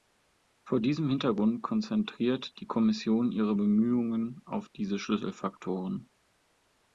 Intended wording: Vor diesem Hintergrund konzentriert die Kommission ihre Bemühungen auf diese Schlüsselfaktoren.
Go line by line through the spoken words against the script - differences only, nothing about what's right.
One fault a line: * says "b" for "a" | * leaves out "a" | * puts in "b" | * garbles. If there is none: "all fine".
all fine